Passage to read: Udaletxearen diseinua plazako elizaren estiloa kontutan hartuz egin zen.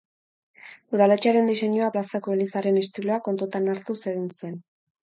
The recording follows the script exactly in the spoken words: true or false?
true